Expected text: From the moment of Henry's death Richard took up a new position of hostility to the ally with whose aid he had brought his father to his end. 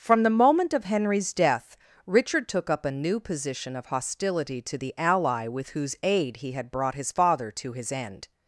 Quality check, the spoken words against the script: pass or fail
pass